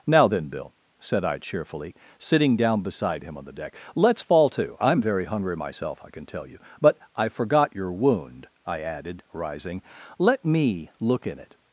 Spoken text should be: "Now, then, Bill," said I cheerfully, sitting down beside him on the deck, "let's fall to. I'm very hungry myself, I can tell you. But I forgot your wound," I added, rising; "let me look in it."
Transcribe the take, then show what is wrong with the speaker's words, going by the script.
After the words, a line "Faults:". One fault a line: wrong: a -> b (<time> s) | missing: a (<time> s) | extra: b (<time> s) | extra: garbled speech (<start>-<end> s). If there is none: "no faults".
"Now, then, Bill," said I cheerfully, sitting down beside him on the deck, "let's fall to. I'm very hungry myself, I can tell you. But I forgot your wound," I added, rising; "let me look in it."
Faults:
no faults